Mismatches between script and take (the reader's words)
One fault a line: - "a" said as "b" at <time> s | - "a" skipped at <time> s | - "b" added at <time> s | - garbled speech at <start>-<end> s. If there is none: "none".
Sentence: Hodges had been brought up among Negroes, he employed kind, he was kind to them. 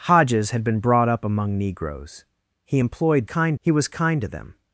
none